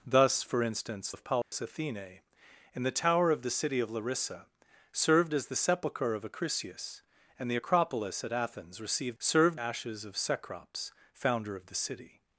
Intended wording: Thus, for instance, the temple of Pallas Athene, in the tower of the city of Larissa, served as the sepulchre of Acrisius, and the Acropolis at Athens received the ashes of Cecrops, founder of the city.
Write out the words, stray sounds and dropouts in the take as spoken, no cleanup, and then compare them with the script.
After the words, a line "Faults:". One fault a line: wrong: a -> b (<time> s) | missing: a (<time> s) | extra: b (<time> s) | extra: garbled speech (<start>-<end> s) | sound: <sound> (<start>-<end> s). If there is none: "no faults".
Thus, for instance, of Pallas Athene, in the tower of the city of Larissa, served as the sepulchre of Acrisius, and the Acropolis at Athens received served ashes of Cecrops, founder of the city.
Faults:
missing: the temple (1.1 s)
sound: dropout (1.4-1.5 s)
wrong: the -> served (9.2 s)